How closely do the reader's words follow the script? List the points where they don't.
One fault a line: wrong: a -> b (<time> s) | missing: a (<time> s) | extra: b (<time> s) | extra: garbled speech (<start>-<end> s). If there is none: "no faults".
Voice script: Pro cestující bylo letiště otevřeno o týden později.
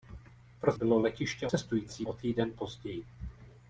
missing: cestující (0.7 s)
wrong: otevřeno -> cestující (1.4 s)